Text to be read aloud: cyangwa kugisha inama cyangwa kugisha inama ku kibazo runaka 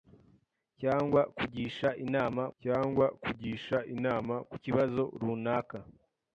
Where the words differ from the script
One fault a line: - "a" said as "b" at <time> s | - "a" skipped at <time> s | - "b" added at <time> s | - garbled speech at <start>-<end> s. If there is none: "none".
none